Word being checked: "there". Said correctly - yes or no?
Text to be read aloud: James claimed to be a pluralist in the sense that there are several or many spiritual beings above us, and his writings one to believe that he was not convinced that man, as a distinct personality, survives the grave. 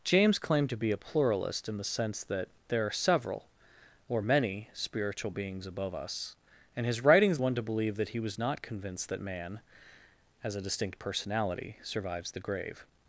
yes